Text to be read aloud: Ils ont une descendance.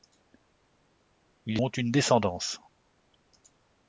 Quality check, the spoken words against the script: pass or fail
pass